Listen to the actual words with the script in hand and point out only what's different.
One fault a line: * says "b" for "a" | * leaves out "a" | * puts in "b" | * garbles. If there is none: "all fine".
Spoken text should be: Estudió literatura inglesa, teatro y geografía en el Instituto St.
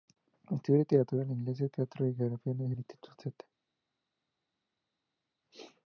all fine